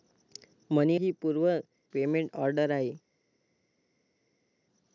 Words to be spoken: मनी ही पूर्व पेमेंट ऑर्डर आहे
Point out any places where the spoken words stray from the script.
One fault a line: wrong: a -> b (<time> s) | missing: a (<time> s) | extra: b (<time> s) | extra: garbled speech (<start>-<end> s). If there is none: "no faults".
no faults